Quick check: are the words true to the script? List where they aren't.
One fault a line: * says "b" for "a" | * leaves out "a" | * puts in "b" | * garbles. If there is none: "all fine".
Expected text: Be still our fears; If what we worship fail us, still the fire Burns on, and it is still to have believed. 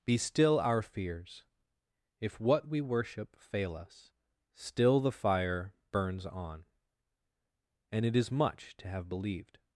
* says "much" for "still"